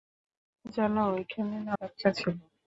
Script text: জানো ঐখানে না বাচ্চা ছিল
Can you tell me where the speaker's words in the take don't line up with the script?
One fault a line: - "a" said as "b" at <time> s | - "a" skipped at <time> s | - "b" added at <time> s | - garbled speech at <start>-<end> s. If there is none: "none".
none